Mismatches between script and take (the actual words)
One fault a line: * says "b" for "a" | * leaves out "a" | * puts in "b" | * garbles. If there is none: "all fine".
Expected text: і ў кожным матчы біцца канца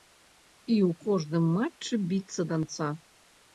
all fine